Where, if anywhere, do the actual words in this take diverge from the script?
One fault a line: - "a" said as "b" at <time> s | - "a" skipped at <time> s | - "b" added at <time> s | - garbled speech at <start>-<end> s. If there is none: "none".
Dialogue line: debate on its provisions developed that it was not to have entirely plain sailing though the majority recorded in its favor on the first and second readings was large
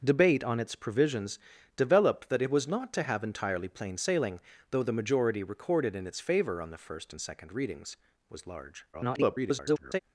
- garbled speech at 8.9-10.0 s